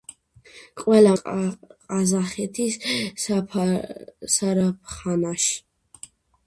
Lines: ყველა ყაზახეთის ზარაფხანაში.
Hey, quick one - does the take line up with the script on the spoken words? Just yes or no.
yes